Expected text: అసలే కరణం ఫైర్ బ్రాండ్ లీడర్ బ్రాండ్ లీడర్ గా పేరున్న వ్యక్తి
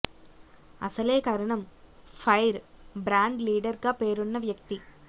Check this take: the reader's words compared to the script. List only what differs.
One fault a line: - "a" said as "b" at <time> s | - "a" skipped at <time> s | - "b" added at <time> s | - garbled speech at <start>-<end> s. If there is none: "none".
- "బ్రాండ్ లీడర్" skipped at 3.8 s